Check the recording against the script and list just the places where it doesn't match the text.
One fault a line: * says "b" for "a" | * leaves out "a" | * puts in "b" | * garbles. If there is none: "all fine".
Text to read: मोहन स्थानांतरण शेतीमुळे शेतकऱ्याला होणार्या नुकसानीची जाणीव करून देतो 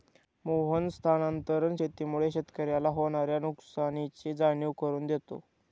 all fine